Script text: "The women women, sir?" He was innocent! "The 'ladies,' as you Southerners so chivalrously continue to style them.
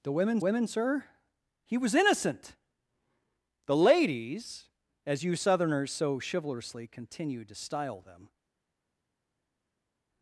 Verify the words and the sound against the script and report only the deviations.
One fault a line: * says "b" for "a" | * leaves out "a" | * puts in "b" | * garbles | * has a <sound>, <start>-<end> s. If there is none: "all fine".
all fine